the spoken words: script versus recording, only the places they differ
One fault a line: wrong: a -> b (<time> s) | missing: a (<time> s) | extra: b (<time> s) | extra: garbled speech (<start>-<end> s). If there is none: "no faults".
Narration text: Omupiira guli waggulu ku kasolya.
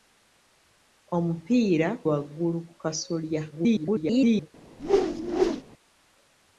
missing: guli (1.9 s)
extra: garbled speech (3.5-4.5 s)